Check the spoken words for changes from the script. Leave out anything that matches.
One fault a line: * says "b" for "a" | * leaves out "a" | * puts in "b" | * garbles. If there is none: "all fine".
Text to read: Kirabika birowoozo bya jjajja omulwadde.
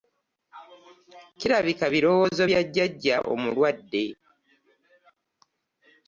all fine